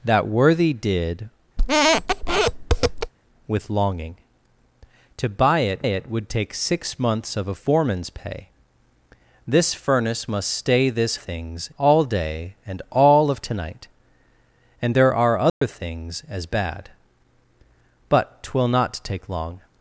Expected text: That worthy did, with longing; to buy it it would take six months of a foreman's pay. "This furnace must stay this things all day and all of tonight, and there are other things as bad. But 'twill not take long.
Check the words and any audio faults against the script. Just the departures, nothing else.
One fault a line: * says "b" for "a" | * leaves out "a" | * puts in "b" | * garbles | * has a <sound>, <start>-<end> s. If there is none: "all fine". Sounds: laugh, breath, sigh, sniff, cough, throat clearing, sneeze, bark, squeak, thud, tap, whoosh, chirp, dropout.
* has a squeak, 1.6-3.1 s
* has a dropout, 15.5-15.6 s